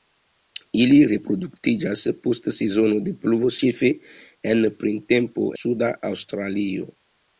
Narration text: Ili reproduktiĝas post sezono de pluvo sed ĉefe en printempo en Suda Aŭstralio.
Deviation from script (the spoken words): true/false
true